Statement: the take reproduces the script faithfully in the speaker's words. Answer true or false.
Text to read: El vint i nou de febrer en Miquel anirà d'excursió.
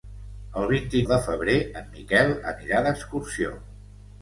false